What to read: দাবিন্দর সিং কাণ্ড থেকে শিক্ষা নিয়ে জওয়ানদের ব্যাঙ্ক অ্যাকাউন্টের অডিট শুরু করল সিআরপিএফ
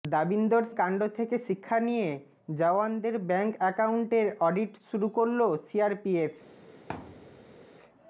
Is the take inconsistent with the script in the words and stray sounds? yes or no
yes